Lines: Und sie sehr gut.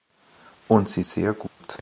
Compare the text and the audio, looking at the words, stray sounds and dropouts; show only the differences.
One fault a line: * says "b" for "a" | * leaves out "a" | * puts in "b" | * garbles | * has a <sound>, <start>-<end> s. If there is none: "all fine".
* has a dropout, 1.5-1.6 s